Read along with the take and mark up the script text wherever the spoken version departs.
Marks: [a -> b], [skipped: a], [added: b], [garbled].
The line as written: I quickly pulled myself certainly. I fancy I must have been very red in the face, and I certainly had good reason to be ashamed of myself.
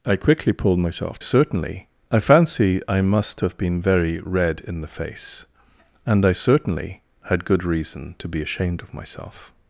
I quickly pulled myself certainly. I fancy I must have been very red in the face, and I certainly had good reason to be ashamed of myself.